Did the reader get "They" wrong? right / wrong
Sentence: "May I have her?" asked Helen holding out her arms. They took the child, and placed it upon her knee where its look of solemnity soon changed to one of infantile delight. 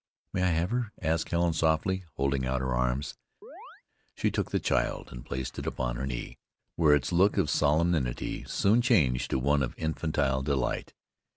wrong